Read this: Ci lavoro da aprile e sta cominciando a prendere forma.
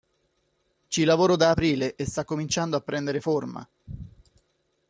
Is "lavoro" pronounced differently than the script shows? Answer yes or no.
no